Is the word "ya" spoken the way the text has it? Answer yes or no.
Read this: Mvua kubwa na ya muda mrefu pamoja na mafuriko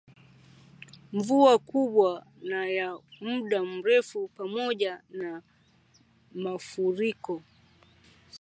yes